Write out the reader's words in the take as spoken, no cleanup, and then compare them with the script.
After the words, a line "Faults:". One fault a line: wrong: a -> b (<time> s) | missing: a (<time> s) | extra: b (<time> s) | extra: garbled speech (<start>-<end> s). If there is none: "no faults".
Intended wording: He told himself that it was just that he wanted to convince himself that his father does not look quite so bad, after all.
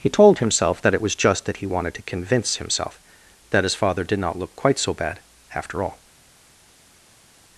He told himself that it was just that he wanted to convince himself that his father did not look quite so bad, after all.
Faults:
wrong: does -> did (4.0 s)